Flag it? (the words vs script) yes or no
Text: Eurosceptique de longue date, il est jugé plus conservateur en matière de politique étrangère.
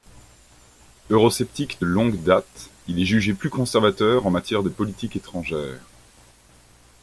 no